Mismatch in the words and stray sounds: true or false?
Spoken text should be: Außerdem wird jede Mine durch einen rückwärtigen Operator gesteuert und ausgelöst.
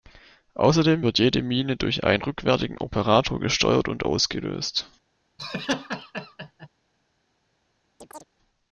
true